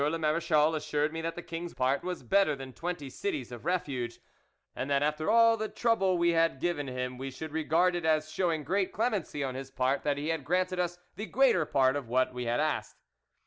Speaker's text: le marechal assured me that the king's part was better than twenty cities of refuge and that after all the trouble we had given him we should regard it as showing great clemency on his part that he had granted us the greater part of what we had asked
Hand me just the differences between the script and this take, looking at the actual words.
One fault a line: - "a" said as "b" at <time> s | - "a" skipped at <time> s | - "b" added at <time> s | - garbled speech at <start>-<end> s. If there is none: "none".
none